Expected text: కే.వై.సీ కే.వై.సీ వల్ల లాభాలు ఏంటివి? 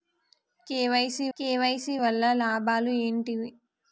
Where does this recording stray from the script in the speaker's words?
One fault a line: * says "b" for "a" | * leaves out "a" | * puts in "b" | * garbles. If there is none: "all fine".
all fine